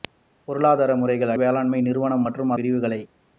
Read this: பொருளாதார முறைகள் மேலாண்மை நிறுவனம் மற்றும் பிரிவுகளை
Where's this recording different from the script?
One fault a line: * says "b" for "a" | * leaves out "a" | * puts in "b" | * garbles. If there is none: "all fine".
all fine